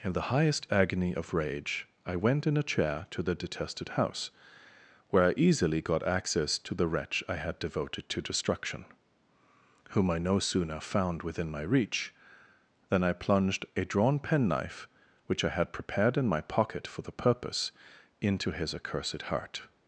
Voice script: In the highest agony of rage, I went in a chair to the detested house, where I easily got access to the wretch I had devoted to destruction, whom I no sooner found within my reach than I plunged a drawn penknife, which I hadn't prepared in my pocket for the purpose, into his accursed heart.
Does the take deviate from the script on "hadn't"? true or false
true